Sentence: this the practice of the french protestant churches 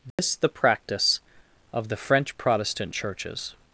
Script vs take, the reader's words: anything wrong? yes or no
no